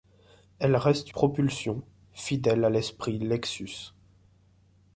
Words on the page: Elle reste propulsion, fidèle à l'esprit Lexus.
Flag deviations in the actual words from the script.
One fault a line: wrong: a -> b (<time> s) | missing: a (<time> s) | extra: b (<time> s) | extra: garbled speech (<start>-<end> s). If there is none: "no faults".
no faults